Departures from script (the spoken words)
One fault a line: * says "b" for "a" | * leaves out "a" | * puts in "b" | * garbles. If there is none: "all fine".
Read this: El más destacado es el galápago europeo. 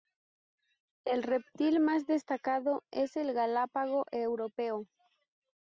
* puts in "reptil"